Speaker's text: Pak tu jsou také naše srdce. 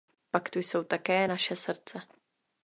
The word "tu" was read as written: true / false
true